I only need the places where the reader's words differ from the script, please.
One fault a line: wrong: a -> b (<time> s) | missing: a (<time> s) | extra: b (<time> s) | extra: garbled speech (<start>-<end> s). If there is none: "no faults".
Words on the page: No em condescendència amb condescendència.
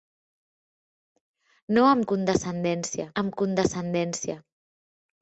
no faults